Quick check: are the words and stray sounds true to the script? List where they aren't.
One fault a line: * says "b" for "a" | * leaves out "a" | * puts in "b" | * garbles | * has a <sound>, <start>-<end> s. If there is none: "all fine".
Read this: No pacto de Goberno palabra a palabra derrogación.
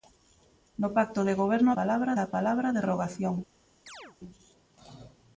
* has a chirp, 3.9-4.2 s